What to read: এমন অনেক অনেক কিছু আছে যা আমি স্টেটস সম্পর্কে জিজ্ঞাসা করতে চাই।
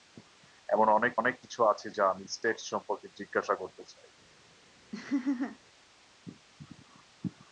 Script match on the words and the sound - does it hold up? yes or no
no